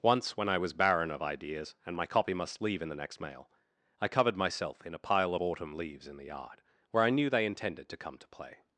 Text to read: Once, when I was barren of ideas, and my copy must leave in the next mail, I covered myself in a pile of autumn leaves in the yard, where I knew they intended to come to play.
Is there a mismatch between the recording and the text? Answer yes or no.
no